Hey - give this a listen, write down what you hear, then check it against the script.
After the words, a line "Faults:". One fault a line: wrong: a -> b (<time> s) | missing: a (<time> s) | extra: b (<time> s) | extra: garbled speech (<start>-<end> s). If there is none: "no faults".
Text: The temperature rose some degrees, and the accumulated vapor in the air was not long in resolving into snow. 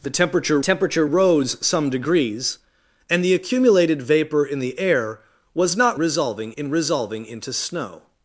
The temperature temperature rose some degrees, and the accumulated vapor in the air was not resolving in resolving into snow.
Faults:
extra: temperature (0.6 s)
wrong: long -> resolving (6.0 s)